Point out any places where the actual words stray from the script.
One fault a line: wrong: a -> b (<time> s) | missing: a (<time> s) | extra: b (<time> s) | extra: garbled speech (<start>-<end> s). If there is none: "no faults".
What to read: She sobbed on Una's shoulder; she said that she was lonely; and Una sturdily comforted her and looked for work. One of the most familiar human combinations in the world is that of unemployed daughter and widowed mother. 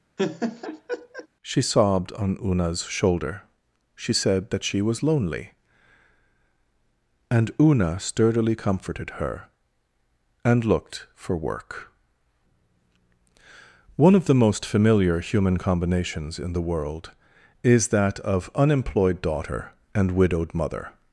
no faults